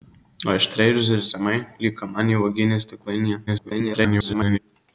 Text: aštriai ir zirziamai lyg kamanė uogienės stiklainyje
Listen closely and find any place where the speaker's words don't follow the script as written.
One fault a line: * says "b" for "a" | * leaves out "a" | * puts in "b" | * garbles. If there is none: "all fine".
* garbles